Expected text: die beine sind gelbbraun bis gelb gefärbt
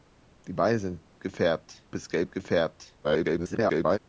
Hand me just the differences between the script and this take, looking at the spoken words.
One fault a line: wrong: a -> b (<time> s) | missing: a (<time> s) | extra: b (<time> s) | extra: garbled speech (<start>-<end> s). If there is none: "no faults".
wrong: gelbbraun -> gefärbt (1.2 s)
extra: garbled speech (3.0-4.0 s)